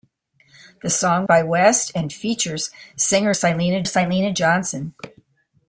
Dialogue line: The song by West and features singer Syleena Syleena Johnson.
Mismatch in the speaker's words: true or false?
false